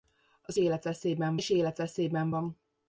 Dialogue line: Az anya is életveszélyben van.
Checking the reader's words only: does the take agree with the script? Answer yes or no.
no